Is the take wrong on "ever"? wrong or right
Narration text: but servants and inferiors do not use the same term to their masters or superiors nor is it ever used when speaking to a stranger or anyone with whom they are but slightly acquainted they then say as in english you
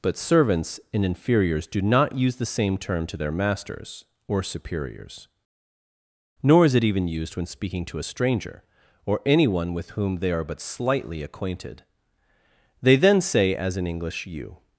wrong